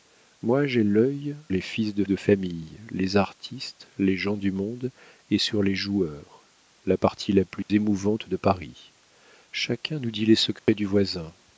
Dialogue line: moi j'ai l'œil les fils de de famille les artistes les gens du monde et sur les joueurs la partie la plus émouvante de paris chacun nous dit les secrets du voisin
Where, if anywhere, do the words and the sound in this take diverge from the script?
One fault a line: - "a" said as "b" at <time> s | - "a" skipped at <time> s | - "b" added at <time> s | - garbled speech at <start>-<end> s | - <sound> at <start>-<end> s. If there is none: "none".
- dropout at 7.6-7.7 s
- dropout at 10.6-10.7 s